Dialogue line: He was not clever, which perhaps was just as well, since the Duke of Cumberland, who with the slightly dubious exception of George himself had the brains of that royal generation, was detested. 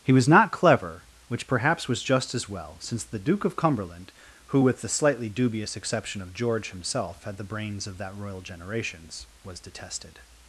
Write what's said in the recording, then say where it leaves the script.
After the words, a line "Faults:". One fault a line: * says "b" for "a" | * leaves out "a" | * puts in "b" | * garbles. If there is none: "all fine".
He was not clever, which perhaps was just as well, since the Duke of Cumberland, who with the slightly dubious exception of George himself had the brains of that royal generations, was detested.
Faults:
* says "generations" for "generation"